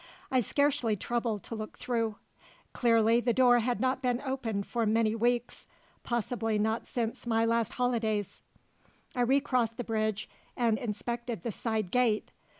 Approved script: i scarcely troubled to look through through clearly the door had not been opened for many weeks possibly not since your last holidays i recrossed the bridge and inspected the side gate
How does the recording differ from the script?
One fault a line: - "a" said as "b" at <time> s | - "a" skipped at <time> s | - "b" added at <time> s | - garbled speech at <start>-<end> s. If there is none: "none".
- "through" skipped at 2.1 s
- "your" said as "my" at 7.3 s